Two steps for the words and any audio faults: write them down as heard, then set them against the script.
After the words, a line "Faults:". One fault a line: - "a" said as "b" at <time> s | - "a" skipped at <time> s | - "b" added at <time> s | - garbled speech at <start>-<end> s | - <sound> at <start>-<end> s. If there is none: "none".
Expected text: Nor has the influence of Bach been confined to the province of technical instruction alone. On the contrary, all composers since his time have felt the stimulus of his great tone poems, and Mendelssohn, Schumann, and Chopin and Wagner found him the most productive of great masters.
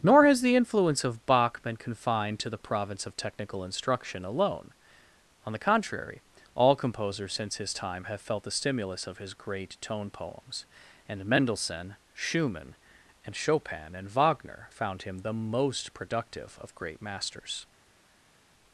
Nor has the influence of Bach been confined to the province of technical instruction alone. On the contrary, all composers since his time have felt the stimulus of his great tone poems, and Mendelssohn, Schumann, and Chopin and Wagner found him the most productive of great masters.
Faults:
none